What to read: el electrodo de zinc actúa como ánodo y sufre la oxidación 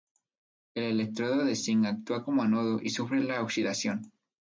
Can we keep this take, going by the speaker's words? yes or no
yes